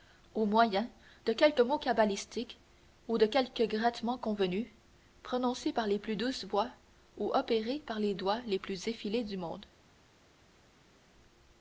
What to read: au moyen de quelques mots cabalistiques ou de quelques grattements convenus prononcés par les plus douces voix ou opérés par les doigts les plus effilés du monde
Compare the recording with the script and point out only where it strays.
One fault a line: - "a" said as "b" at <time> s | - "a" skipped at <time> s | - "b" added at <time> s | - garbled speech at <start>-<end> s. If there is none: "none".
none